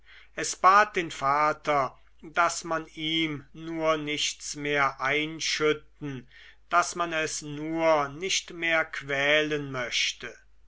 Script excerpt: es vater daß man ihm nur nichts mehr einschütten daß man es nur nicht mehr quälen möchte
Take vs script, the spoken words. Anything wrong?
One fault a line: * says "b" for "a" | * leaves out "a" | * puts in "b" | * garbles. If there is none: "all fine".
* puts in "bat den"